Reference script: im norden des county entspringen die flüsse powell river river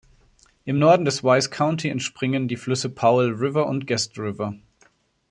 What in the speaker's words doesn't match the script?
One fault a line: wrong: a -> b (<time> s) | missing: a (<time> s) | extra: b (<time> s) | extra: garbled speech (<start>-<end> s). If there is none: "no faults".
extra: wise (1.3 s)
extra: und guest (3.7 s)